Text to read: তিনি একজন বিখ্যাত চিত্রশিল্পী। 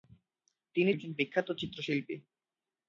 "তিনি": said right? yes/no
yes